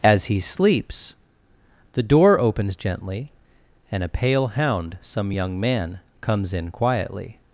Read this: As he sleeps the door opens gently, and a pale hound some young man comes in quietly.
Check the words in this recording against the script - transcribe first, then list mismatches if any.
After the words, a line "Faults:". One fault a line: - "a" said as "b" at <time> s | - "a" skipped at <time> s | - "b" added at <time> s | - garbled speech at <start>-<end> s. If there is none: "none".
As he sleeps the door opens gently, and a pale hound some young man comes in quietly.
Faults:
none